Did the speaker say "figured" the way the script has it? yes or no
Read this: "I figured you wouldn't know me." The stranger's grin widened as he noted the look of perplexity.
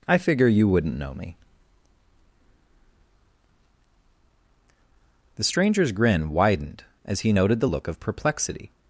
no